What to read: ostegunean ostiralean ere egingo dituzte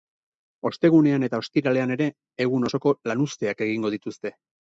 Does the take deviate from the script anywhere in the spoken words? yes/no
yes